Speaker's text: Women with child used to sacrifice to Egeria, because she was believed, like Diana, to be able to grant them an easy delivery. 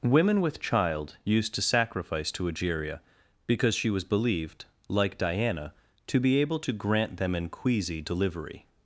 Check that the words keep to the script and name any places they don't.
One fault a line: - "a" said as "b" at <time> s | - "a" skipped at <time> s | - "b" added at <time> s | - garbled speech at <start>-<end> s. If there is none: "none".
- "easy" said as "queasy" at 7.5 s